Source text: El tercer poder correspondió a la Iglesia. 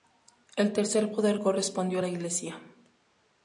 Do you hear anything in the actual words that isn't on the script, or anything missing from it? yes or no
no